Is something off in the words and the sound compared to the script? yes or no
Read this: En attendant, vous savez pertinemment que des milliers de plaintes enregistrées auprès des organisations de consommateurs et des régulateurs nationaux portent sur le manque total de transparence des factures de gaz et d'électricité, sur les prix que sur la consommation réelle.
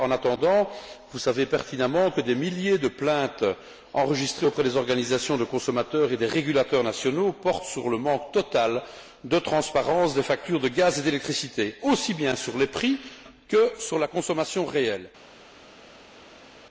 yes